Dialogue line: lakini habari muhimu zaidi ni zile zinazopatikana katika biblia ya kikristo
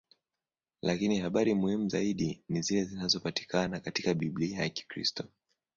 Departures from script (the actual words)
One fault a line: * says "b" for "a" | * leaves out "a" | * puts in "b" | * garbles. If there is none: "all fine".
all fine